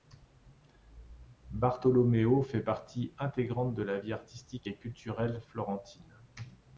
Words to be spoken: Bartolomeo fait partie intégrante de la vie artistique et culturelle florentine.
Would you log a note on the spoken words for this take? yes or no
no